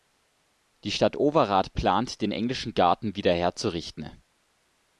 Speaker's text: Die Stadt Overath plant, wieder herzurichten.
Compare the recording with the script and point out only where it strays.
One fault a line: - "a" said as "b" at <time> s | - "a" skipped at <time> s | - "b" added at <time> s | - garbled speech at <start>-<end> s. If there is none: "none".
- "den englischen Garten" added at 2.2 s